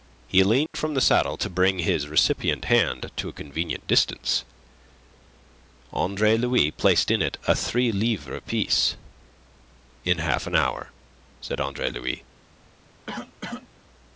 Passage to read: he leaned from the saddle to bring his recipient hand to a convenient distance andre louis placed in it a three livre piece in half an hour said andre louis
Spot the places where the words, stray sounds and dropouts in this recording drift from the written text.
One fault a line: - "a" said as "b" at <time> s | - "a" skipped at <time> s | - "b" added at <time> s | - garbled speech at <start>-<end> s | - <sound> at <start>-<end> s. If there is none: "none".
- dropout at 0.7-0.7 s
- cough at 13.1-13.7 s